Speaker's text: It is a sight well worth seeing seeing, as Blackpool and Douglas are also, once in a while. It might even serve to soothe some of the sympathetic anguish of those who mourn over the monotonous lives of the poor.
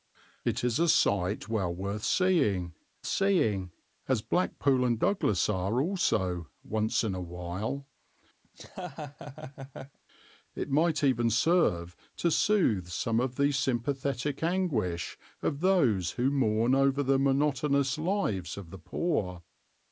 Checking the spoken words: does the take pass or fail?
pass